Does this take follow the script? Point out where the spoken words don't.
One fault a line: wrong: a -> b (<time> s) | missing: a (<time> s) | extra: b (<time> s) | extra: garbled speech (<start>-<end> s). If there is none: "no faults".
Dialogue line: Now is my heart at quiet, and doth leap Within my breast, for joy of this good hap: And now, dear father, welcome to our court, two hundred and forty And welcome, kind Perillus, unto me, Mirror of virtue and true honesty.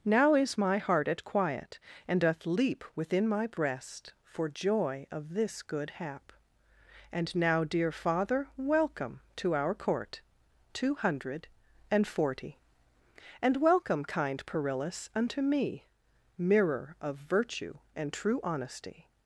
no faults